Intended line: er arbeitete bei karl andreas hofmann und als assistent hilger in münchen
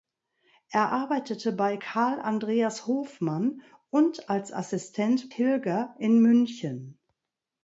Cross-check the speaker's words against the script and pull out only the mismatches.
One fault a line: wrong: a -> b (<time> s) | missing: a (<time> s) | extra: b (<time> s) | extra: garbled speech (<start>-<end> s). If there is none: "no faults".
no faults